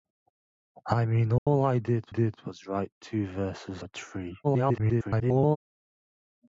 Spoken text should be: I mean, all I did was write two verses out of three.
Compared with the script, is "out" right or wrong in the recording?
wrong